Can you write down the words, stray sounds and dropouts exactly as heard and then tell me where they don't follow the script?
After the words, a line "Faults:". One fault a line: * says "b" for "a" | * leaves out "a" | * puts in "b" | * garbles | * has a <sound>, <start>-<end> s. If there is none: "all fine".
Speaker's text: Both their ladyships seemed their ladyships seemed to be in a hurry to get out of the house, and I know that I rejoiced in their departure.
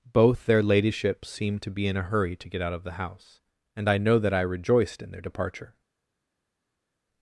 Both their ladyships seemed to be in a hurry to get out of the house, and I know that I rejoiced in their departure.
Faults:
* leaves out "their ladyships seemed"